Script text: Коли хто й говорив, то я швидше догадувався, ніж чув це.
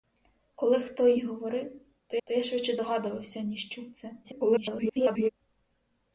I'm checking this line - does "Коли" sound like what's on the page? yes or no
yes